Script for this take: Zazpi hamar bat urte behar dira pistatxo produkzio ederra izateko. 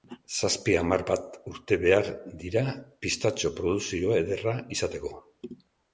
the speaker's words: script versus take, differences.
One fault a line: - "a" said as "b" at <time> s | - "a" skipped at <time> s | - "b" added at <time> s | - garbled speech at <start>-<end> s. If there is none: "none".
none